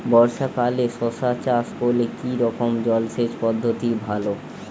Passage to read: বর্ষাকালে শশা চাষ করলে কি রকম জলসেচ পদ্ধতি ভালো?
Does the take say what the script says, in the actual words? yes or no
yes